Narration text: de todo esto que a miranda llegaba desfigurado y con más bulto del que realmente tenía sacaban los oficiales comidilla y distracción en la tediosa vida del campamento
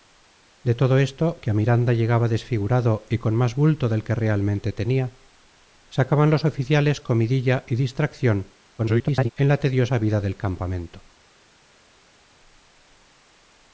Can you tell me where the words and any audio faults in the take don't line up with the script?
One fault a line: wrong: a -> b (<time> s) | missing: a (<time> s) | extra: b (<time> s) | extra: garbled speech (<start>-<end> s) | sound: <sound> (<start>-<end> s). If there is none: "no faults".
extra: garbled speech (8.8-9.3 s)